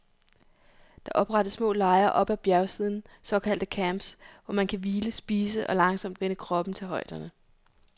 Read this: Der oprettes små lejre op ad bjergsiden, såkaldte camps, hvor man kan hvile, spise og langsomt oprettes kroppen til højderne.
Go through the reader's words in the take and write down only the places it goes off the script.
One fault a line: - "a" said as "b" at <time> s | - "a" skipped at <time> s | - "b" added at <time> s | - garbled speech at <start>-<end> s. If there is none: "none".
- "oprettes" said as "vænne" at 6.2 s